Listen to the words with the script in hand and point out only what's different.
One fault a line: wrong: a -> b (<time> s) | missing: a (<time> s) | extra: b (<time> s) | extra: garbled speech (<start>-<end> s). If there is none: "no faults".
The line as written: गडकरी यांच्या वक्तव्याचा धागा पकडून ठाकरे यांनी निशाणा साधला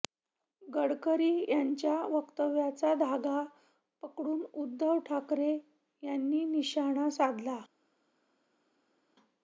extra: उद्धव (4.5 s)